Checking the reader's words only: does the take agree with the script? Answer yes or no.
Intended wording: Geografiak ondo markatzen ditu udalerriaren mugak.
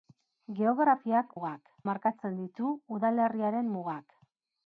no